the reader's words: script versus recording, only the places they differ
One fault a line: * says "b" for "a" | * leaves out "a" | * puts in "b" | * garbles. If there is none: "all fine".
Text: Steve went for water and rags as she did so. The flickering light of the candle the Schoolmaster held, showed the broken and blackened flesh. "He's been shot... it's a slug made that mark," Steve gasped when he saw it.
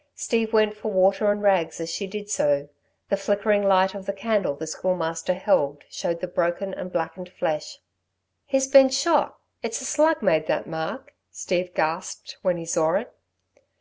all fine